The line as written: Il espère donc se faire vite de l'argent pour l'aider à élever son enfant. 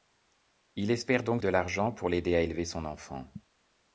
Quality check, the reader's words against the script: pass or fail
fail